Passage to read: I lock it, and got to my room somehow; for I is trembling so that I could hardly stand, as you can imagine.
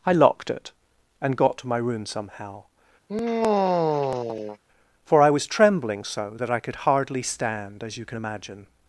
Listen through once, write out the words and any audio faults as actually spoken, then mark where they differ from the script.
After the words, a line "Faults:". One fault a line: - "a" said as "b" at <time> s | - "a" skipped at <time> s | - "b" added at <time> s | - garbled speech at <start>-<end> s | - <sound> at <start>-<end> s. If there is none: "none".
I locked it, and got to my room somehow; for I was trembling so that I could hardly stand, as you can imagine.
Faults:
- "lock" said as "locked" at 0.1 s
- sigh at 3.1-4.6 s
- "is" said as "was" at 5.3 s